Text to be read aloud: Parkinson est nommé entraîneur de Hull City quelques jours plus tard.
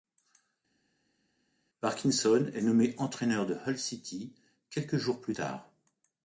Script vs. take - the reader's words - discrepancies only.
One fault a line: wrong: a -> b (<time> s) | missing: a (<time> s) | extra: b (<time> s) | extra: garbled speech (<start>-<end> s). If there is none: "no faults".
no faults